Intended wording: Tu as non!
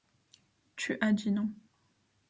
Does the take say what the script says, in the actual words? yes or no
no